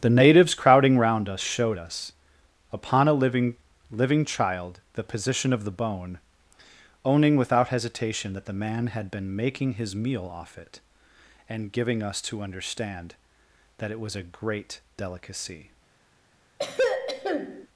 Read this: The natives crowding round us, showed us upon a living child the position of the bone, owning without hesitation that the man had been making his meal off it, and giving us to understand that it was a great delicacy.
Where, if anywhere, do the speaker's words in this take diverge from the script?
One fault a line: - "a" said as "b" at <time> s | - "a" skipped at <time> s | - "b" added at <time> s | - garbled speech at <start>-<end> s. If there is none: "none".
- "living" added at 3.9 s